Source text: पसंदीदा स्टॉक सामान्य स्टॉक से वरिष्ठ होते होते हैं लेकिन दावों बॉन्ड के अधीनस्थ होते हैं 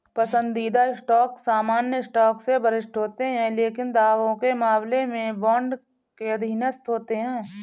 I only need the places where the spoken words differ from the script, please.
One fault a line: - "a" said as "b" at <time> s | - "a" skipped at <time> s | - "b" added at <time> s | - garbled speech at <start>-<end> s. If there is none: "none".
- "होते" skipped at 3.2 s
- "के मामले में" added at 4.3 s